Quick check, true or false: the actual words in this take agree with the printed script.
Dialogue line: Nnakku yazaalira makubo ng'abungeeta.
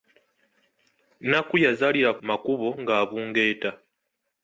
true